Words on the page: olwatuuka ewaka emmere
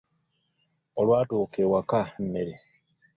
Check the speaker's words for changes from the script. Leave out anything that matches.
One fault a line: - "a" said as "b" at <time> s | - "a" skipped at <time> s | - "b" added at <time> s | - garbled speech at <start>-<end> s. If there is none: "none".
none